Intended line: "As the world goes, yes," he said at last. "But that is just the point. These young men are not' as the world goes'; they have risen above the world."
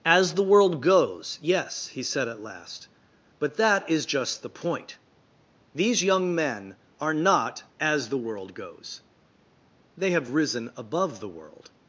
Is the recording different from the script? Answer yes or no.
no